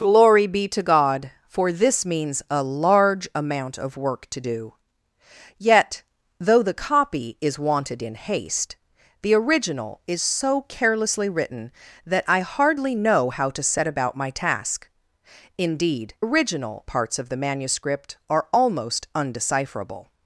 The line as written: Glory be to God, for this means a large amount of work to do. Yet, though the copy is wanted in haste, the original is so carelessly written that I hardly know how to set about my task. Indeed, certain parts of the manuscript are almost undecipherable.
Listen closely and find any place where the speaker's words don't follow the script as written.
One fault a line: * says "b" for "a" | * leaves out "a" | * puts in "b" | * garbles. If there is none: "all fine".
* says "original" for "certain"